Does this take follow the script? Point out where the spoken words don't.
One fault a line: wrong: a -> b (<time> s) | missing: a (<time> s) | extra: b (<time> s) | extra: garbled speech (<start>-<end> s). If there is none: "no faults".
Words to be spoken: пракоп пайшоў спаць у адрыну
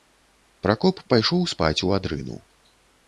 no faults